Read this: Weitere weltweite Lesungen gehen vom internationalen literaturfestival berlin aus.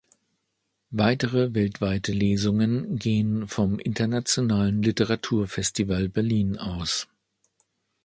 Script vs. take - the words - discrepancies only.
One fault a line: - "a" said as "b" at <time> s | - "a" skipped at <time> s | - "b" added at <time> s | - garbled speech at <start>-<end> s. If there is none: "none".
none